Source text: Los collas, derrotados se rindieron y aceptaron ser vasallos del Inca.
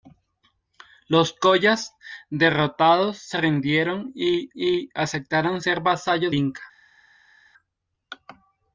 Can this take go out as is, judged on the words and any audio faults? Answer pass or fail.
fail